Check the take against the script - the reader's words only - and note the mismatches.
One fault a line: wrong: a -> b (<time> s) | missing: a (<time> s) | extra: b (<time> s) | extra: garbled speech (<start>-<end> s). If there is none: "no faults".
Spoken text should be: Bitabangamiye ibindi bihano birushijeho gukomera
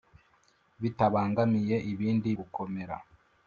missing: bihano birushijeho (2.3 s)